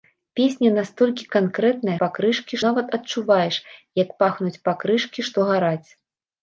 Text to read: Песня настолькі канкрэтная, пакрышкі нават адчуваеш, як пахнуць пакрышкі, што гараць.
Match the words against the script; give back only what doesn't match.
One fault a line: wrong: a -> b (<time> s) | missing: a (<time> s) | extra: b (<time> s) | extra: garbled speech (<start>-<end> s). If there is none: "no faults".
no faults